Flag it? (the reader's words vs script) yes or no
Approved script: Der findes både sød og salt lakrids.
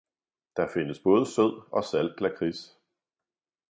no